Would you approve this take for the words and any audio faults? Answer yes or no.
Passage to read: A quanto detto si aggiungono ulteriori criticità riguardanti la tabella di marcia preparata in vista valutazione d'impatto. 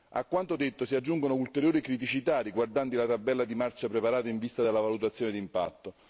no